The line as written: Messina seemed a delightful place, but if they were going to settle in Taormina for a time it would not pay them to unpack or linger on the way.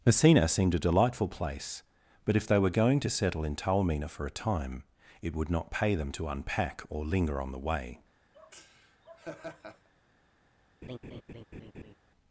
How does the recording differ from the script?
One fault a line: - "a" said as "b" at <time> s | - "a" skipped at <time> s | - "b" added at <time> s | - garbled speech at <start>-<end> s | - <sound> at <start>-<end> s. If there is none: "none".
- laugh at 8.3-9.9 s
- laugh at 10.8-11.9 s